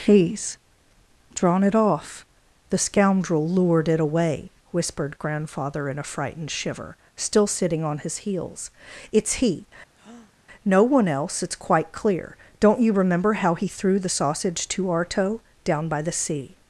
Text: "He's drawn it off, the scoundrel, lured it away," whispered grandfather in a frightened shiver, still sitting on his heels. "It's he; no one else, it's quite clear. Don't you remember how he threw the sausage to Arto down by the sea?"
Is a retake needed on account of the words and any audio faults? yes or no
yes